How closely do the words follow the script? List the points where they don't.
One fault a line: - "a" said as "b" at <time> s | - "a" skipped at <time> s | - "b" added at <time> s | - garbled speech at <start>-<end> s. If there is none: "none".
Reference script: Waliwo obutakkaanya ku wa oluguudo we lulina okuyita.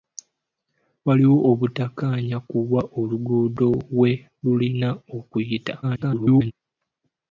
- garbled speech at 5.8-6.5 s